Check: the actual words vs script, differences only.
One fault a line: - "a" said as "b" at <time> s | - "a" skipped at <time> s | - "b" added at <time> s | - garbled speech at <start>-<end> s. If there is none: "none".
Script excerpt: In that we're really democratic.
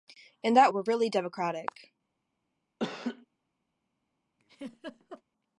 none